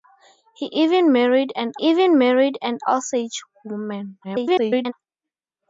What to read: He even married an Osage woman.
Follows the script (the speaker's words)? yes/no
no